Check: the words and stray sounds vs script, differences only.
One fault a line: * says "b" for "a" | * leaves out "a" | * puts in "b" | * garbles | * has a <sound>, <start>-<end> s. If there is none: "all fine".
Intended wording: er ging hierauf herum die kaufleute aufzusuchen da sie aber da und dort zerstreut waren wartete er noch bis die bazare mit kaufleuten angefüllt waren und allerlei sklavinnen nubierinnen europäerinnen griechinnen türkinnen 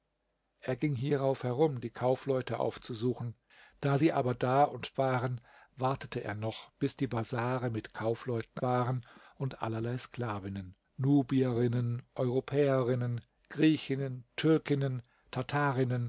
* leaves out "dort zerstreut"
* leaves out "angefüllt"